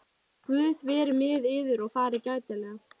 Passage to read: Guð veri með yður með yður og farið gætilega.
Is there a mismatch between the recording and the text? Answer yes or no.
yes